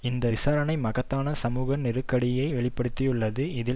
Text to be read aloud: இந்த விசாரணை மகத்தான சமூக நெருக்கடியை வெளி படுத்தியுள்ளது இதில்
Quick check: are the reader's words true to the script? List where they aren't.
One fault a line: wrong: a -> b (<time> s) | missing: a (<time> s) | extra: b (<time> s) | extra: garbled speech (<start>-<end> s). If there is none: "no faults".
no faults